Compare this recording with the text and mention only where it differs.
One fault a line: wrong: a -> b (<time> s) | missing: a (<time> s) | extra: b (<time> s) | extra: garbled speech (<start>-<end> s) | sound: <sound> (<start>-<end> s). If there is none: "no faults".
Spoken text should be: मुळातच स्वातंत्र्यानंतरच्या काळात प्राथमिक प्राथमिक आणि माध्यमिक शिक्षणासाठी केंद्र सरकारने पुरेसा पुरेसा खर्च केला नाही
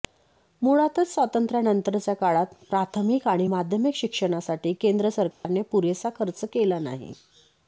missing: प्राथमिक (3.3 s)
sound: dropout (5.3-5.4 s)
missing: पुरेसा (6.1 s)